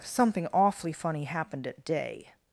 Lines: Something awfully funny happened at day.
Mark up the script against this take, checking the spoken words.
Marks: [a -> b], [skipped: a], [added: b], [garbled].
Something awfully funny happened at day.